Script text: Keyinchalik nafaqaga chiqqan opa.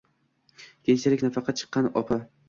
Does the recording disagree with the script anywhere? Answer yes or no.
no